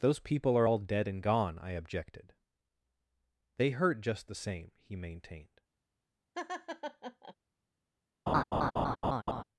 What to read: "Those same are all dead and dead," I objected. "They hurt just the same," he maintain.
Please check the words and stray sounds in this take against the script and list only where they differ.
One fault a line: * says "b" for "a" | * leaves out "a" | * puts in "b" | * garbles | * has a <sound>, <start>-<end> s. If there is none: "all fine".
* says "people" for "same"
* says "gone" for "dead"
* says "maintained" for "maintain"
* has a laugh, 6.3-7.3 s
* has a laugh, 8.3-9.4 s